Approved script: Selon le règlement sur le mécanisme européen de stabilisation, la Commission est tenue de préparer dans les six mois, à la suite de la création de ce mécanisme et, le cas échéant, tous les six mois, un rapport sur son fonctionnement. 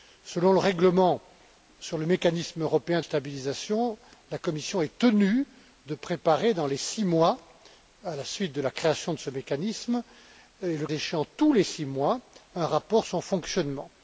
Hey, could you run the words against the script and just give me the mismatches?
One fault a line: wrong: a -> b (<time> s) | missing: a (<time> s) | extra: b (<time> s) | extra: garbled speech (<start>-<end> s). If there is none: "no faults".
missing: de (3.0 s)
missing: cas (10.9 s)
missing: sur (13.0 s)